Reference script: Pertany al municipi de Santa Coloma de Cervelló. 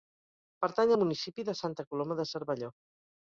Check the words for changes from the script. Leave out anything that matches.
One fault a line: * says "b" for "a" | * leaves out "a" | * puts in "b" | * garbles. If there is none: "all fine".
all fine